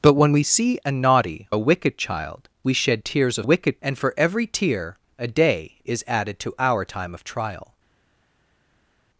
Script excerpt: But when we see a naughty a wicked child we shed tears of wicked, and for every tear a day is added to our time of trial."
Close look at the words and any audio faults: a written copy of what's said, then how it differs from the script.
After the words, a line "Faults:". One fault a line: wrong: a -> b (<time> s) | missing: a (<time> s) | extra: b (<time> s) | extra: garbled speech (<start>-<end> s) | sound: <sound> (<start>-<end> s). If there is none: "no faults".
But when we see a naughty a wicked child we shed tears of wicked, and for every tear a day is added to our time of trial."
Faults:
no faults